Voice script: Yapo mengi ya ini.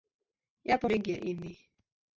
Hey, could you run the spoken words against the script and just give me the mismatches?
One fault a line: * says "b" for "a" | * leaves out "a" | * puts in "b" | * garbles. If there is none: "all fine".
all fine